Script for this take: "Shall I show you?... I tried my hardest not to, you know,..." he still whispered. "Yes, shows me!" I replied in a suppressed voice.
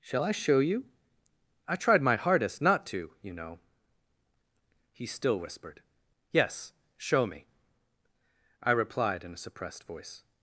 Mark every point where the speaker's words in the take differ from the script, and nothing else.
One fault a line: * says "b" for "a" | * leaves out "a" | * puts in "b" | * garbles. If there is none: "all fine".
* says "show" for "shows"